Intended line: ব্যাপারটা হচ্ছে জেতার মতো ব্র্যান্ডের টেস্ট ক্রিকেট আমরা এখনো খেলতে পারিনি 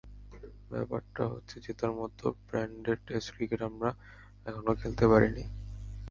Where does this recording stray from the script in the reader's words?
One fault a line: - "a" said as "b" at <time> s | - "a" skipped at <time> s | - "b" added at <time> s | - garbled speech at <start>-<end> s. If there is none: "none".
none